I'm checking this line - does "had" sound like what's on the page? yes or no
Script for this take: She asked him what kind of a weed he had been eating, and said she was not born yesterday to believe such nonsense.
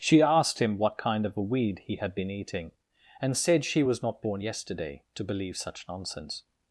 yes